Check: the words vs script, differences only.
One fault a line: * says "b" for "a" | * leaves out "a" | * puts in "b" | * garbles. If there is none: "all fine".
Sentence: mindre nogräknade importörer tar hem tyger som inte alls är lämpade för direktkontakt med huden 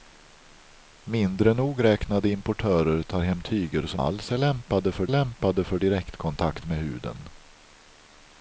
* leaves out "inte"
* puts in "lämpade för"